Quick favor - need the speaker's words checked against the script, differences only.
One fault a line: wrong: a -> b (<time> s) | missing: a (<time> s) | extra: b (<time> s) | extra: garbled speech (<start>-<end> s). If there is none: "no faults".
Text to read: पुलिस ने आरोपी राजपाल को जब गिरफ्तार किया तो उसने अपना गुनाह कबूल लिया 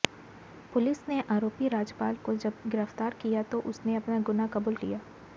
no faults